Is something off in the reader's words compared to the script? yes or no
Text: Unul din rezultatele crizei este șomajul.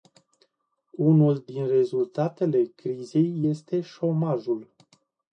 no